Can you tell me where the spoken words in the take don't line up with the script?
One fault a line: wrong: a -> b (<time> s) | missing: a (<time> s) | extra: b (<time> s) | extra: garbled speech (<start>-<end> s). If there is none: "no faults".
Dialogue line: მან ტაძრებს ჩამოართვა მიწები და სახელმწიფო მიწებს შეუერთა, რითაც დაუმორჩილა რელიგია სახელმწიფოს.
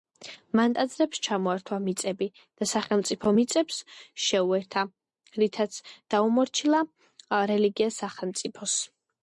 no faults